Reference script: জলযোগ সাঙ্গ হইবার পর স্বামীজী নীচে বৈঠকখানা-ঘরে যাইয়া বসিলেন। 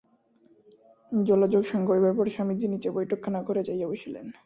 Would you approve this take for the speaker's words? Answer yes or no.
yes